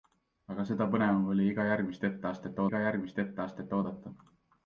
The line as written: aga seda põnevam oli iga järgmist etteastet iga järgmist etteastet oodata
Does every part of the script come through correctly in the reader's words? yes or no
yes